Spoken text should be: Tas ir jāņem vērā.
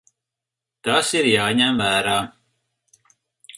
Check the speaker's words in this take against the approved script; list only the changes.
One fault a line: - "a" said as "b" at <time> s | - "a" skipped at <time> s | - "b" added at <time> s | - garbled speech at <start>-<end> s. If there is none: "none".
none